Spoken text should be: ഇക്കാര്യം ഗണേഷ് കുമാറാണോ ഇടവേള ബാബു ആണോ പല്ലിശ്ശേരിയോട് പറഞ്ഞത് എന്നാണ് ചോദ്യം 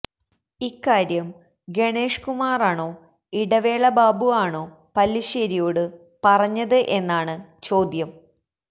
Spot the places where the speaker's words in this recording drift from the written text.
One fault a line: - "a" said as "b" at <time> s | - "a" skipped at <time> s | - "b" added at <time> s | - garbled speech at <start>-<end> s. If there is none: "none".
none